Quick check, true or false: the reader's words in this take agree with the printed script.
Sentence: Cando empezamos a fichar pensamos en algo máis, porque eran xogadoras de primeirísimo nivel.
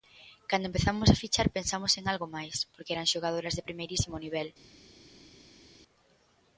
true